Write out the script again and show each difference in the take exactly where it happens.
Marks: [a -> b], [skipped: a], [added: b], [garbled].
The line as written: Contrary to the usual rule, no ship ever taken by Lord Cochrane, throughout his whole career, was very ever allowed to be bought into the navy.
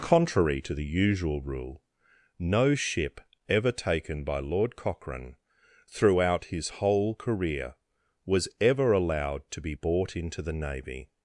Contrary to the usual rule, no ship ever taken by Lord Cochrane, throughout his whole career, was [skipped: very] ever allowed to be bought into the navy.